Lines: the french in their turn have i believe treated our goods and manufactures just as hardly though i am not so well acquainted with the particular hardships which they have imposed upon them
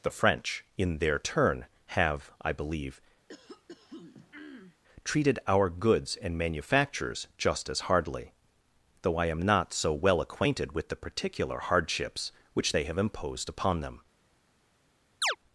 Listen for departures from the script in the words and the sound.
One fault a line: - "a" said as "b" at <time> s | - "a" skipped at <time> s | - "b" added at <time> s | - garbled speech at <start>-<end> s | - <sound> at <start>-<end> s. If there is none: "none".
- throat clearing at 3.3-4.8 s
- chirp at 15.2-15.4 s